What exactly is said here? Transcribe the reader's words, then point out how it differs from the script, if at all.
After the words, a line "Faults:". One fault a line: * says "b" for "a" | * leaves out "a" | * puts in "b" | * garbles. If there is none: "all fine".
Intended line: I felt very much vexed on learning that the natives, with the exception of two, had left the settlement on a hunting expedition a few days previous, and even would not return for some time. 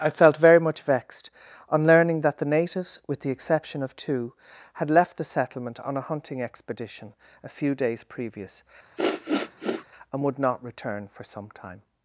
I felt very much vexed on learning that the natives, with the exception of two, had left the settlement on a hunting expedition a few days previous, and would not return for some time.
Faults:
* leaves out "even"